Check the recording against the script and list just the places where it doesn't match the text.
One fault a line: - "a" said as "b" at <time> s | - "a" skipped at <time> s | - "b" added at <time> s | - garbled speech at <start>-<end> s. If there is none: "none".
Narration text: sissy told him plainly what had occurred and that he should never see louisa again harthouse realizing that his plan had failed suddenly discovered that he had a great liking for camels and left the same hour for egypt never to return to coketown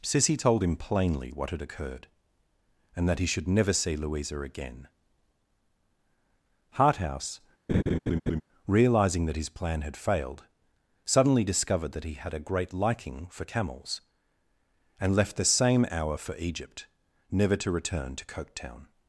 none